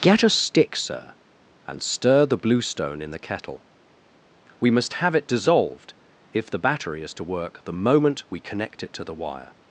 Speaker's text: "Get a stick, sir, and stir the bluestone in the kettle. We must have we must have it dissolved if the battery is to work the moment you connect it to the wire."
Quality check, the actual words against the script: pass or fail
fail